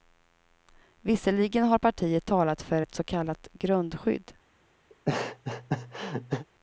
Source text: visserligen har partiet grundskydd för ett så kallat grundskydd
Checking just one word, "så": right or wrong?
right